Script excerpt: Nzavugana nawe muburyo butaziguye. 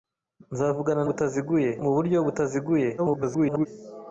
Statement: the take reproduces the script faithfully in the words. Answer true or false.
false